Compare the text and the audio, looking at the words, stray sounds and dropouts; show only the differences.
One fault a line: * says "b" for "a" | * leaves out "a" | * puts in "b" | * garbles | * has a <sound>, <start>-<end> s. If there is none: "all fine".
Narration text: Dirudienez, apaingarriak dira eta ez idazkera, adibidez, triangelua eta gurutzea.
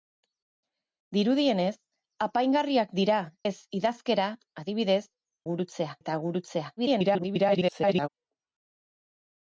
* leaves out "eta"
* says "gurutzea" for "triangelua"
* garbles